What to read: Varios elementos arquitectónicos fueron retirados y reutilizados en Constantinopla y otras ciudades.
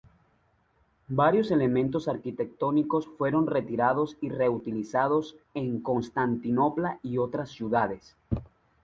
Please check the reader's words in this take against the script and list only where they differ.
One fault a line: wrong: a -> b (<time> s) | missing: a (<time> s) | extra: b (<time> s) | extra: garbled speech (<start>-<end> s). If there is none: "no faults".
no faults